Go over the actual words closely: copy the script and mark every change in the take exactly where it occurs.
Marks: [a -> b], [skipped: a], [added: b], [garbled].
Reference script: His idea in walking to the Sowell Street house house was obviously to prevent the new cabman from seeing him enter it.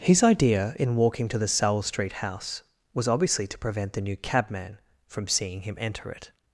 His idea in walking to the Sowell Street house [skipped: house] was obviously to prevent the new cabman from seeing him enter it.